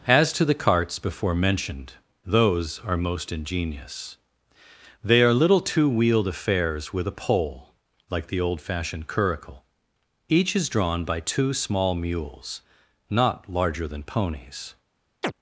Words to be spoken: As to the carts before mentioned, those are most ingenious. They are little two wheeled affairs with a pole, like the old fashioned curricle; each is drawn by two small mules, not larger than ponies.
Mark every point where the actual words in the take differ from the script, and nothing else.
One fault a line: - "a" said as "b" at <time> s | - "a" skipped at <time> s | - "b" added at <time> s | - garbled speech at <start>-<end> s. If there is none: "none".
none